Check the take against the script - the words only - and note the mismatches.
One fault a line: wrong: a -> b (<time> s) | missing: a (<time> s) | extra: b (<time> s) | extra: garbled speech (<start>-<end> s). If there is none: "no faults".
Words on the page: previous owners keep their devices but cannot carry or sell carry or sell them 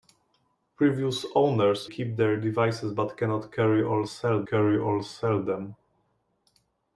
no faults